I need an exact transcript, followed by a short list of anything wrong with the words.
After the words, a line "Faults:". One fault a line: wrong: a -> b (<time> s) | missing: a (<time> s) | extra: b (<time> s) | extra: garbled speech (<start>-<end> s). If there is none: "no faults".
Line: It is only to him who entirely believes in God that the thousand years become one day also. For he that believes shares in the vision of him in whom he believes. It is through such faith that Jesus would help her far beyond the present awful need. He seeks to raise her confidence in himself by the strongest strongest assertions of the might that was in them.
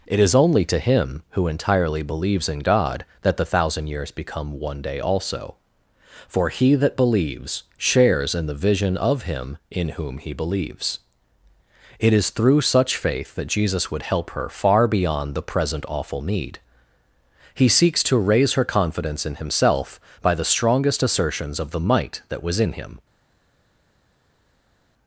It is only to him who entirely believes in God that the thousand years become one day also. For he that believes shares in the vision of him in whom he believes. It is through such faith that Jesus would help her far beyond the present awful need. He seeks to raise her confidence in himself by the strongest assertions of the might that was in him.
Faults:
missing: strongest (21.0 s)
wrong: them -> him (22.7 s)